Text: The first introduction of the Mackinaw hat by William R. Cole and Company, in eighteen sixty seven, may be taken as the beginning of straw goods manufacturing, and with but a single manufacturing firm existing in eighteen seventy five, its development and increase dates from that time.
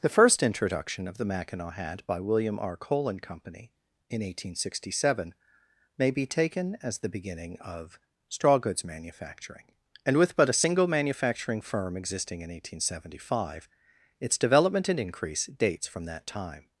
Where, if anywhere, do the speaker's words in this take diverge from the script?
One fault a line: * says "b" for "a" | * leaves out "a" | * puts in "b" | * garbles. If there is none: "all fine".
all fine